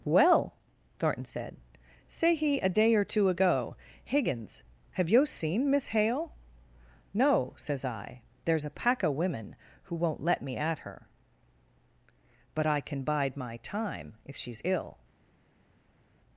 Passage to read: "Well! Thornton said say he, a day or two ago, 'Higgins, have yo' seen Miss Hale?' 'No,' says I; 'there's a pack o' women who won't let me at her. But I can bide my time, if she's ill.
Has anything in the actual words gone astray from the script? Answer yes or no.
no